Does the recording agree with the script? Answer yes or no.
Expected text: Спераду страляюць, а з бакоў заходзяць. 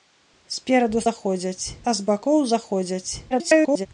no